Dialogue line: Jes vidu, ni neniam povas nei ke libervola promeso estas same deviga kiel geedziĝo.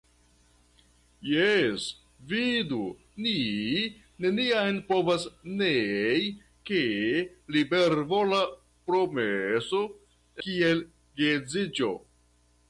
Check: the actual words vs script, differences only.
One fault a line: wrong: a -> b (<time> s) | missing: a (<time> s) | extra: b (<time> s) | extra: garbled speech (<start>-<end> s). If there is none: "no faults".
missing: estas same deviga (9.8 s)